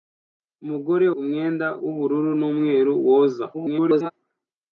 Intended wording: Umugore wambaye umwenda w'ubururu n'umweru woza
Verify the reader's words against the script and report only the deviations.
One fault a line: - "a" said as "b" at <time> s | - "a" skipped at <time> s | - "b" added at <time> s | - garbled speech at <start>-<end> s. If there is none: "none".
- "wambaye" skipped at 1.1 s
- garbled speech at 3.5-4.1 s